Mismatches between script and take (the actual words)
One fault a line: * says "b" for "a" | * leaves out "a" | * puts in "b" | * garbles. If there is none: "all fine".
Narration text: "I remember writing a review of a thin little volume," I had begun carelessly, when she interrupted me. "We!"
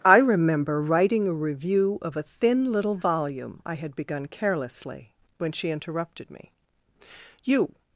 * says "You" for "We"